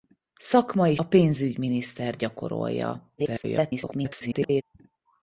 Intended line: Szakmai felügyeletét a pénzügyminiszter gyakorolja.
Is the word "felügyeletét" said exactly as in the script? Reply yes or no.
no